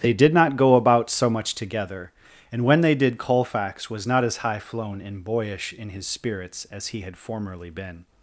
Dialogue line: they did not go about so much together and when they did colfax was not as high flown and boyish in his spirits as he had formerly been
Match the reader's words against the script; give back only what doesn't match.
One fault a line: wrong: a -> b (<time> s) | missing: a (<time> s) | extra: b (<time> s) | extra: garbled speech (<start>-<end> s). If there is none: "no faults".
no faults